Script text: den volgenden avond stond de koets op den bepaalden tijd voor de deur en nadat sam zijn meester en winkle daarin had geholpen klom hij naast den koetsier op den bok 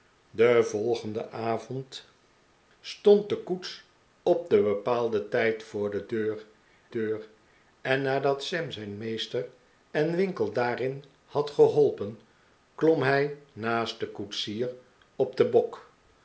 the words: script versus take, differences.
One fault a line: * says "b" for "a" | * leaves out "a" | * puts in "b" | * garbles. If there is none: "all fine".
* puts in "deur"